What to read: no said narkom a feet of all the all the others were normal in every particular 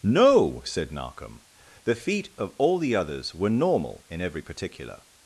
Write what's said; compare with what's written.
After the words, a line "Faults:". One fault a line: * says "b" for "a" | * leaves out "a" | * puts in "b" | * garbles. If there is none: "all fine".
no said narkom the feet of all the others were normal in every particular
Faults:
* says "the" for "a"
* leaves out "all the"